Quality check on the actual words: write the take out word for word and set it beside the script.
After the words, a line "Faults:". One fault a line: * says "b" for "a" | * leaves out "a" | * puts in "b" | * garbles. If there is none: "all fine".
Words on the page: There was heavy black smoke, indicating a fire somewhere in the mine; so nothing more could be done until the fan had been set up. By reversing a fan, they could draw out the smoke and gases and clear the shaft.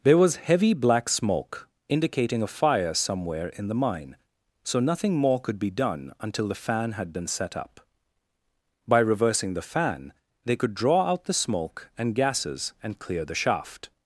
There was heavy black smoke, indicating a fire somewhere in the mine; so nothing more could be done until the fan had been set up. By reversing the fan, they could draw out the smoke and gases and clear the shaft.
Faults:
* says "the" for "a"